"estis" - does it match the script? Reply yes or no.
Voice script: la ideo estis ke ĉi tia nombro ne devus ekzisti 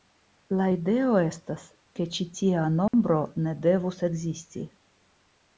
no